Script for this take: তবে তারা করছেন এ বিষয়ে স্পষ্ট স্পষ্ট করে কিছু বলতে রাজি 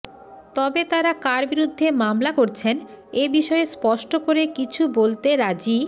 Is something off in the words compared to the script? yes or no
yes